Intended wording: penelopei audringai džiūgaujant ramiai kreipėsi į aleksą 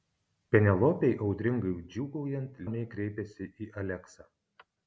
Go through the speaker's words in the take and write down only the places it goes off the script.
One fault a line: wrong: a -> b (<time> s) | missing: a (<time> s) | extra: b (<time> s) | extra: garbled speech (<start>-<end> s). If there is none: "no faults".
no faults